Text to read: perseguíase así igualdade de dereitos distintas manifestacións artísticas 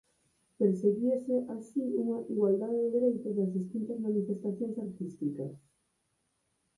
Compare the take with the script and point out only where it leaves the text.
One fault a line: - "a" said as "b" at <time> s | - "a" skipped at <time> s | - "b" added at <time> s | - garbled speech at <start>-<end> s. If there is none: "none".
- "unha" added at 2.0 s
- "das" added at 3.4 s